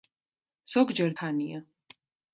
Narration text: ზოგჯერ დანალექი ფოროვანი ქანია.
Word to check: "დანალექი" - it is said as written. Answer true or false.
false